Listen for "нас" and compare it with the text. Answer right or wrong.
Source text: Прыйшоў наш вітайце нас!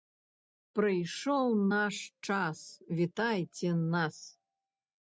right